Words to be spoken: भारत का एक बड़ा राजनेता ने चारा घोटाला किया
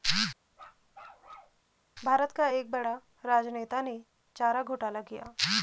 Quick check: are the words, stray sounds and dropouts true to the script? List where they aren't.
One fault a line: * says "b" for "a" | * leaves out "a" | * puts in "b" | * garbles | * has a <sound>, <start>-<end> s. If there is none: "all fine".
* has a bark, 0.5-1.6 s